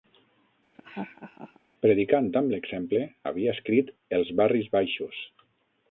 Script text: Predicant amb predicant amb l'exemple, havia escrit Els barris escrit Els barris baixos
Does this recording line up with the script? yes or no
no